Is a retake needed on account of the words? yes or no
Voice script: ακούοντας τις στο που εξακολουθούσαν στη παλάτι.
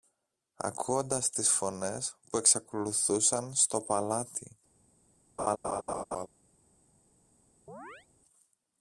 yes